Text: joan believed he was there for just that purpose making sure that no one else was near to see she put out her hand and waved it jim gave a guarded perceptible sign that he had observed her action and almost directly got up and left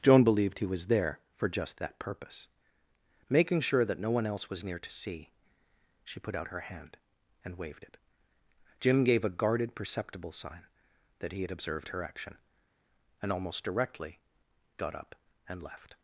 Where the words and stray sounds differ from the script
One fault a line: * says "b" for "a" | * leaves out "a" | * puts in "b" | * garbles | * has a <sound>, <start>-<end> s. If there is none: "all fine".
all fine